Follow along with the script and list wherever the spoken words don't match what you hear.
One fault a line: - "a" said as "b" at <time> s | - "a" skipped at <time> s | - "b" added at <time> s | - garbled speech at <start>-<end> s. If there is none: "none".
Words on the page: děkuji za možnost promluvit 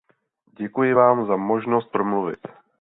- "vám" added at 0.9 s